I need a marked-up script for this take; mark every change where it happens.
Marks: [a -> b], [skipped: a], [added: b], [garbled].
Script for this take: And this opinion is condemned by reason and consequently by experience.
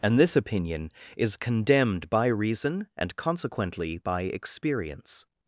And this opinion is condemned by reason and consequently by experience.